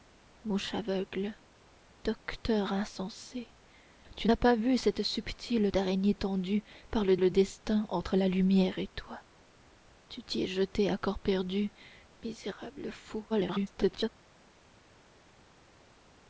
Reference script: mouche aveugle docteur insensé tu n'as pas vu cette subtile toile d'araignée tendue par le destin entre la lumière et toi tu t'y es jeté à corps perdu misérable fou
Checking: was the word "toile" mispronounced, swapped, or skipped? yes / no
yes